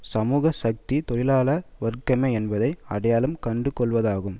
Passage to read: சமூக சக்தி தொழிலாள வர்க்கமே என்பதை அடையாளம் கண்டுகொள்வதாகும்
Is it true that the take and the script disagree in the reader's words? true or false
false